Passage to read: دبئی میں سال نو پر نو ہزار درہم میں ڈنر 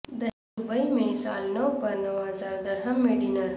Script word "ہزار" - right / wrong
right